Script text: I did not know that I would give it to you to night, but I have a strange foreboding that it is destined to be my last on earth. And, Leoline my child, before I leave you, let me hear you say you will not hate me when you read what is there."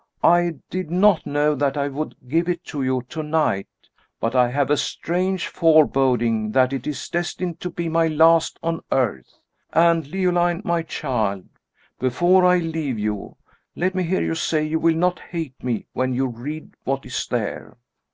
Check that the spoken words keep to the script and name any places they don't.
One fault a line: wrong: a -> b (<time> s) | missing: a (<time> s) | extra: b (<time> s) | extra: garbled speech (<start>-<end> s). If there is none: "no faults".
no faults